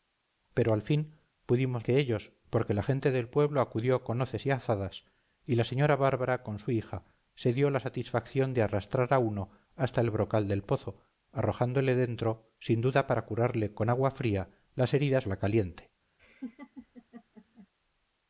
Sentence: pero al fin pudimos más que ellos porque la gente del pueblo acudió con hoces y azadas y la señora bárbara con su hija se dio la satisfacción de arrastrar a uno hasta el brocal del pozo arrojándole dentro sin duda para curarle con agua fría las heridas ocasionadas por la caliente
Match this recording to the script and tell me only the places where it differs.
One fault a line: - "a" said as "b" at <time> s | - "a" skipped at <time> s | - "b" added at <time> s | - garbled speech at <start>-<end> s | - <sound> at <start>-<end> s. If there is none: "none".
- "más" skipped at 1.9 s
- "ocasionadas por" skipped at 15.3 s
- laugh at 16.2-17.7 s